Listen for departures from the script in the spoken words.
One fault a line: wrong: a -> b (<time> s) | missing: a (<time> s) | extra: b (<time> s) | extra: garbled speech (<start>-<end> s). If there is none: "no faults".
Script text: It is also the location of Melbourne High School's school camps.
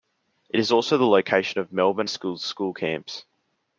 missing: High (2.1 s)